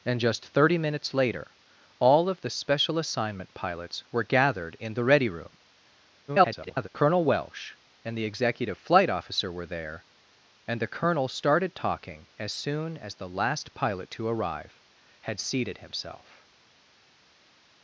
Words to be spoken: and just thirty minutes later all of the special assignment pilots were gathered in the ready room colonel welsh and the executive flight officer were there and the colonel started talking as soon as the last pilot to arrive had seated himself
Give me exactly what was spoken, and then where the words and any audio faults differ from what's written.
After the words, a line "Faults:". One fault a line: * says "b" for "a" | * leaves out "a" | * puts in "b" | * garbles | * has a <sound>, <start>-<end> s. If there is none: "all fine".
and just thirty minutes later all of the special assignment pilots were gathered in the ready room [garbled] colonel welsh and the executive flight officer were there and the colonel started talking as soon as the last pilot to arrive had seated himself
Faults:
* garbles